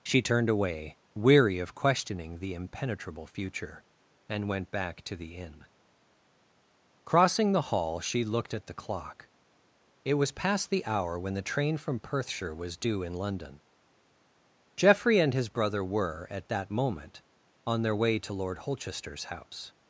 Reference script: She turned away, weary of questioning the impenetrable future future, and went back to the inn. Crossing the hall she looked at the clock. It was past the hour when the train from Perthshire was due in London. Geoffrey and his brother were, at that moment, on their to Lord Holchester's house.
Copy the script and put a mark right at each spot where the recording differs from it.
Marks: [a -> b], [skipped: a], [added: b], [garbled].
She turned away, weary of questioning the impenetrable future [skipped: future,] and went back to the inn. Crossing the hall she looked at the clock. It was past the hour when the train from Perthshire was due in London. Geoffrey and his brother were, at that moment, on their [added: way] to Lord Holchester's house.